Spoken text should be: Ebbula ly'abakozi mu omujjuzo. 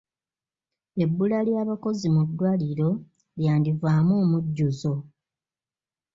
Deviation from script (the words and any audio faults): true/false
true